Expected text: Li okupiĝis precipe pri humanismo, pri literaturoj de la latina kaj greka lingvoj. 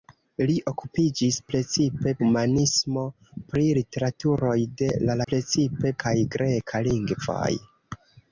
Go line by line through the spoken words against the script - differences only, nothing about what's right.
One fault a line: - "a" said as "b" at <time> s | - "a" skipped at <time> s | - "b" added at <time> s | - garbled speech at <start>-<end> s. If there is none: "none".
- "pri" skipped at 2.1 s
- "latina" said as "precipe" at 5.3 s